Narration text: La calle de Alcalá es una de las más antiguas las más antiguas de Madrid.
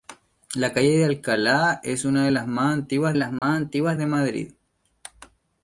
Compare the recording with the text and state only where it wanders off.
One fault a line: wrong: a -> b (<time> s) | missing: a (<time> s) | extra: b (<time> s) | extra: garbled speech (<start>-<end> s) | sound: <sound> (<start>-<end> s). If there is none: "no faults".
sound: dropout (3.4-3.4 s)